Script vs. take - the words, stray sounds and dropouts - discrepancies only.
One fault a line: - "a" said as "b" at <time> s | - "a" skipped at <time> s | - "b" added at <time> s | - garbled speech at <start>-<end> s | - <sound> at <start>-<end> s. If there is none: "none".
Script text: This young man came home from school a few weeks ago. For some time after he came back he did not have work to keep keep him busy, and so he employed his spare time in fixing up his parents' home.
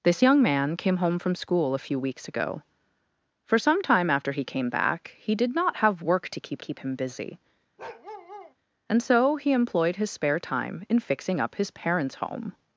- bark at 7.8-8.5 s